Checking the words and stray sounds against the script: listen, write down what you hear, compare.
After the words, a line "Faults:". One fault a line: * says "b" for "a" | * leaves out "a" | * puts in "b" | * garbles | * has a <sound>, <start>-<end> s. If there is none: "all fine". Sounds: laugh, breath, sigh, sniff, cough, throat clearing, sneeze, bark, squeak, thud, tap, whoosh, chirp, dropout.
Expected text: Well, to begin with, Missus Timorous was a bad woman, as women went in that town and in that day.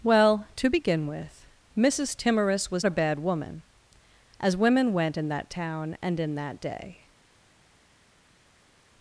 Well, to begin with, Missus Timorous was a bad woman, as women went in that town and in that day.
Faults:
all fine